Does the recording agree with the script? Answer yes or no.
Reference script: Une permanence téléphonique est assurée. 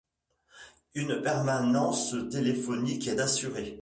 yes